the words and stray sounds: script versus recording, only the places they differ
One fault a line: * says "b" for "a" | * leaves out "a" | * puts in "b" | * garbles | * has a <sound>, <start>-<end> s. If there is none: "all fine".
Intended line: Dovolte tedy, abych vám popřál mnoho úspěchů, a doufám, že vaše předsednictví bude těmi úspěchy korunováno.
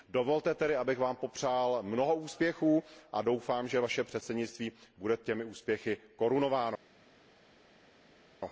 all fine